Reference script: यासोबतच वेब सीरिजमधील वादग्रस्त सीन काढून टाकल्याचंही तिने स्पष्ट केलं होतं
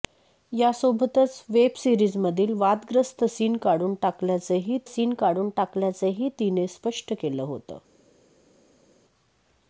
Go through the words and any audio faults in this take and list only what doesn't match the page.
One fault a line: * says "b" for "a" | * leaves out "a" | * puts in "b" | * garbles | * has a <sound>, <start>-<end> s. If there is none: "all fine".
* puts in "सीन काढून टाकल्याचंही"